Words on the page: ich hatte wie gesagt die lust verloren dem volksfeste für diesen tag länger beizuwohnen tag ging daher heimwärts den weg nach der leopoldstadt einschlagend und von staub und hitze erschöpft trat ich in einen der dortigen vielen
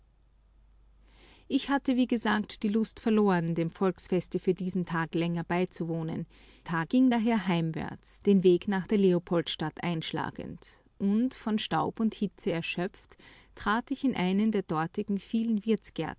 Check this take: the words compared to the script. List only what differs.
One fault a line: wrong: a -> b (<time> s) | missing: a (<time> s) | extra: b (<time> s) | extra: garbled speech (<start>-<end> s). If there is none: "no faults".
no faults